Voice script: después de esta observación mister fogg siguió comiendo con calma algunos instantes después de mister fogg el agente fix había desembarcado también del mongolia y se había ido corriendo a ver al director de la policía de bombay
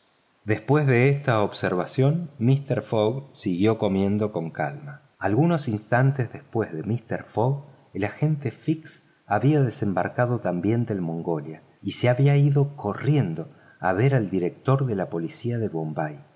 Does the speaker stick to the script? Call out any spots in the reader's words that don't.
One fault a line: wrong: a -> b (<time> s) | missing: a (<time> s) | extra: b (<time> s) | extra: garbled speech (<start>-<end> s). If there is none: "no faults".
no faults